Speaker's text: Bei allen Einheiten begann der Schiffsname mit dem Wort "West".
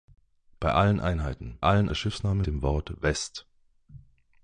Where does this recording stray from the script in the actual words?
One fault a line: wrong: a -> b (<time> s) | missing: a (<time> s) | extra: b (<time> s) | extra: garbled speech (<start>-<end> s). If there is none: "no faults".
wrong: begann -> allen (1.6 s)
missing: mit (2.4 s)